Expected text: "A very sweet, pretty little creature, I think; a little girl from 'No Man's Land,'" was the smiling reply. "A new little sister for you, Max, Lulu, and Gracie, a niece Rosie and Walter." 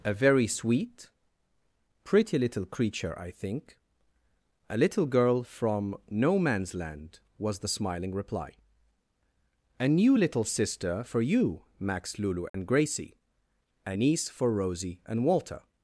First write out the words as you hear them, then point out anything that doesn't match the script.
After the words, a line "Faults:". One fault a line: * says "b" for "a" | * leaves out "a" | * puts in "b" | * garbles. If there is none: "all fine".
"A very sweet, pretty little creature, I think; a little girl from 'No Man's Land,'" was the smiling reply. "A new little sister for you, Max, Lulu, and Gracie, a niece for Rosie and Walter."
Faults:
* puts in "for"